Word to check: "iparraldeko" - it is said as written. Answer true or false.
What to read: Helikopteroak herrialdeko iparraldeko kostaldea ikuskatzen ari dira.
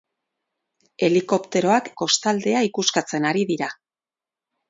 false